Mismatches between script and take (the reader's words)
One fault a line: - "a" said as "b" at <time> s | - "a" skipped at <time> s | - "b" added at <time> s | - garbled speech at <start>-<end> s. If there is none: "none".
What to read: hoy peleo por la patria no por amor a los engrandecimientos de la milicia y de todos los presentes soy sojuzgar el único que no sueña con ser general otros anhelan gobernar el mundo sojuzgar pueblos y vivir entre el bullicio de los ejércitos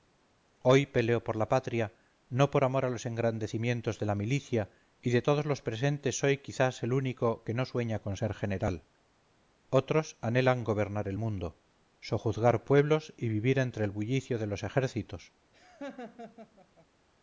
- "sojuzgar" said as "quizás" at 6.4 s